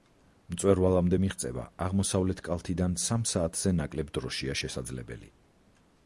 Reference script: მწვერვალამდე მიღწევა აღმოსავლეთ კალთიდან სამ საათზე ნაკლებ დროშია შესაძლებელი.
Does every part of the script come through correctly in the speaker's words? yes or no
yes